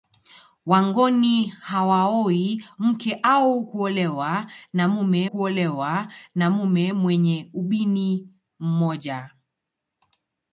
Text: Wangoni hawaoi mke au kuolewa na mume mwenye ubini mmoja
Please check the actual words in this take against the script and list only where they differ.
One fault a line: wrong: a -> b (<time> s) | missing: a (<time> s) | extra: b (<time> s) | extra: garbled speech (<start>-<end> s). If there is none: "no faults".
extra: kuolewa na mume (5.2 s)